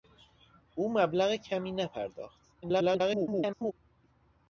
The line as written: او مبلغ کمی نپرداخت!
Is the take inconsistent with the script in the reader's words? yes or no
yes